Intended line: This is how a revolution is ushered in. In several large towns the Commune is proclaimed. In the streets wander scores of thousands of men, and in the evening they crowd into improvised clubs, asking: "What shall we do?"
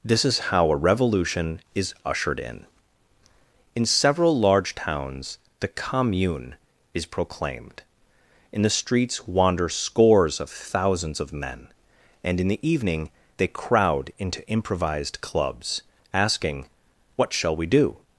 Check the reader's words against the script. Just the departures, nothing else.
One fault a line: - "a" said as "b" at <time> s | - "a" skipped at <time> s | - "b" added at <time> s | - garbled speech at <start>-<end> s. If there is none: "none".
none